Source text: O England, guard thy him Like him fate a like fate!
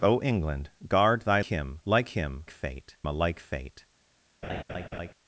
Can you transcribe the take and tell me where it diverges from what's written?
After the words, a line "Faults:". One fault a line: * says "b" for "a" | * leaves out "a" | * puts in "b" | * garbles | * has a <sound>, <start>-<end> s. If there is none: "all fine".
O England, guard thy him Like him fate a like fate!
Faults:
* has a laugh, 4.4-5.1 s